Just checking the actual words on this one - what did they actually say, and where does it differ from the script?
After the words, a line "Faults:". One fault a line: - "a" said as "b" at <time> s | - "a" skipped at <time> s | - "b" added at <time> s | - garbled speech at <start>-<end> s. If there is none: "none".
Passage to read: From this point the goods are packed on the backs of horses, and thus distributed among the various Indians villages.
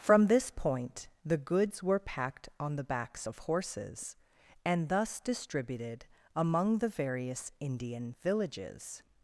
From this point the goods were packed on the backs of horses, and thus distributed among the various Indian villages.
Faults:
- "are" said as "were" at 1.8 s
- "Indians" said as "Indian" at 7.6 s